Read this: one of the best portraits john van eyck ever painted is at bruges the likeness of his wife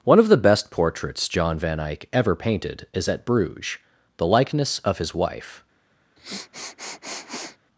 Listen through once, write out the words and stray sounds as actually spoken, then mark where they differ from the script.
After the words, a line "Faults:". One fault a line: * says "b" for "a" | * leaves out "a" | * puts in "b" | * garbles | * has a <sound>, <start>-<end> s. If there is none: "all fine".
one of the best portraits john van eyck ever painted is at bruges the likeness of his wife
Faults:
* has a sniff, 6.2-7.6 s